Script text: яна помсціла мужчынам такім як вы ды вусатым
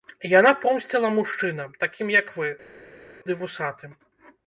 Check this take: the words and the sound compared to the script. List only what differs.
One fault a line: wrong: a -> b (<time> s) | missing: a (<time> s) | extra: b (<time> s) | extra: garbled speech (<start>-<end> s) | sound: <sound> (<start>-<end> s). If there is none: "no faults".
no faults